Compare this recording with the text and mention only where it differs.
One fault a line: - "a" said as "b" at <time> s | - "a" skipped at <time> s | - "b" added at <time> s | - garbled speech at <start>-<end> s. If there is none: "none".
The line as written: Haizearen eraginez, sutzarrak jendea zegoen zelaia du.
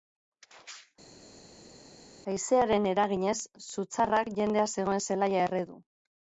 - "erre" added at 5.5 s